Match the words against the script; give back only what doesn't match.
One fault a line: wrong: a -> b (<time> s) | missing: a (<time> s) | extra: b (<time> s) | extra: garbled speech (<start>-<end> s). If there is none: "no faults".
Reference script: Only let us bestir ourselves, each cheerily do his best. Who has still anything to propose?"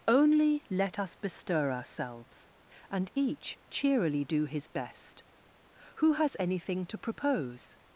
extra: and (2.9 s)
missing: still (6.4 s)